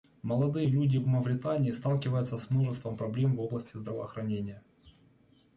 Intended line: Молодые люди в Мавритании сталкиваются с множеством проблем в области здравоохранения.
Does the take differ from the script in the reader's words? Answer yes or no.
no